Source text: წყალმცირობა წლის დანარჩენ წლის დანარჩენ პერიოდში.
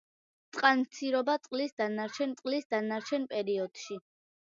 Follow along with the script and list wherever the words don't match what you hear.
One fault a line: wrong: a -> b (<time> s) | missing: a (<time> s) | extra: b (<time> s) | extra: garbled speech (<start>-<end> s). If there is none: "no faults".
no faults